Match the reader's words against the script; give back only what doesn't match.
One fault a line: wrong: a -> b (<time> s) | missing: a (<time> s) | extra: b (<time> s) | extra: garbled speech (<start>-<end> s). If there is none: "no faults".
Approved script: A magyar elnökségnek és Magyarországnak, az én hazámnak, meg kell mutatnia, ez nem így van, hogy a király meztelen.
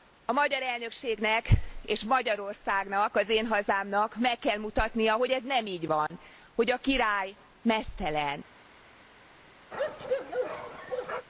extra: hogy (5.1 s)